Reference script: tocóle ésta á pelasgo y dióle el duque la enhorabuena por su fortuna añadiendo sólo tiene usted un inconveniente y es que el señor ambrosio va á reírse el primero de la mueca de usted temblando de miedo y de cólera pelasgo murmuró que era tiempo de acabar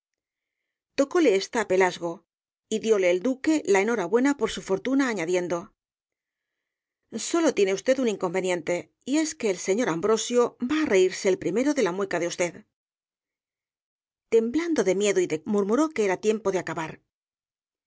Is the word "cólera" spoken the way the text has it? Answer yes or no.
no